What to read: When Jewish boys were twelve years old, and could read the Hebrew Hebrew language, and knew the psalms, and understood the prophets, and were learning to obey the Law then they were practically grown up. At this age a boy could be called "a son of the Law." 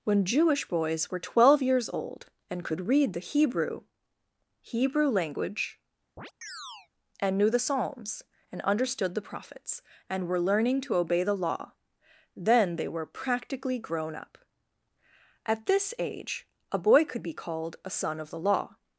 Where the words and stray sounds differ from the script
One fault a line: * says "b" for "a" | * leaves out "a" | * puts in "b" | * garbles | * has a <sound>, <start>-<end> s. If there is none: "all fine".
* has a chirp, 6.2-6.9 s